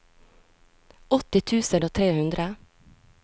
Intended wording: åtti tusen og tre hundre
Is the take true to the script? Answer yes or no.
yes